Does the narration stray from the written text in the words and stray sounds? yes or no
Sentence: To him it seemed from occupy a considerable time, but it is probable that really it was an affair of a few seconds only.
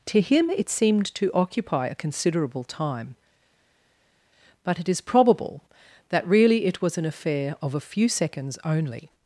yes